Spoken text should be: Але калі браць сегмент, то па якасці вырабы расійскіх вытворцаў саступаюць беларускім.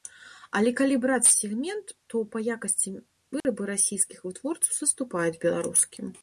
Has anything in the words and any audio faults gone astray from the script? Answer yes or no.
yes